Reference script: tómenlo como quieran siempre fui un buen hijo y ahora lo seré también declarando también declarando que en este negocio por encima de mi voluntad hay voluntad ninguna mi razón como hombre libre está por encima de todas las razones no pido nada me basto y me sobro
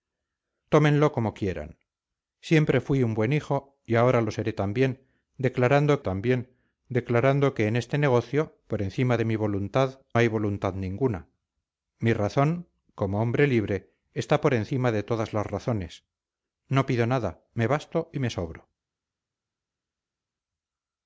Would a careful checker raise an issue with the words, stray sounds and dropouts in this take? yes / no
no